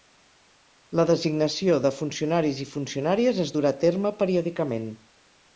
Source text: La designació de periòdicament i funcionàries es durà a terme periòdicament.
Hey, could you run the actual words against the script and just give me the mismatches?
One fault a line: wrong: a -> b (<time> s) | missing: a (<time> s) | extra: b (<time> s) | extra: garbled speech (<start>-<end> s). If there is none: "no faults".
wrong: periòdicament -> funcionaris (2.0 s)